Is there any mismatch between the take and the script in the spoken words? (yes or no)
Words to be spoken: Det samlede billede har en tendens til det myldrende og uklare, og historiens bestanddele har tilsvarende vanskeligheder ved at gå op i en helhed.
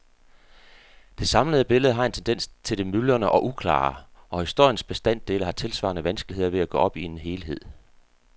no